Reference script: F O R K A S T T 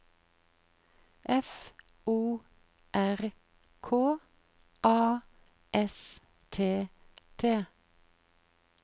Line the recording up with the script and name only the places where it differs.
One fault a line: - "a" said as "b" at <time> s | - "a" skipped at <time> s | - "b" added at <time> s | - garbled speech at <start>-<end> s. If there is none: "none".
none